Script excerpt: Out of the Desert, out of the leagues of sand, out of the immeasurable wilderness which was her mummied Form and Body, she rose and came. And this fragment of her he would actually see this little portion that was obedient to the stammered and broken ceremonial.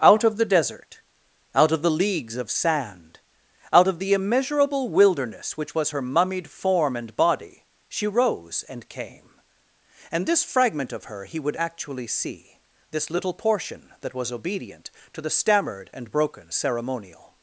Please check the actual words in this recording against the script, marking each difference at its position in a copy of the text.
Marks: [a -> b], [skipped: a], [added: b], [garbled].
Out of the Desert, out of the leagues of sand, out of the immeasurable wilderness which was her mummied Form and Body, she rose and came. And this fragment of her he would actually see this little portion that was obedient to the stammered and broken ceremonial.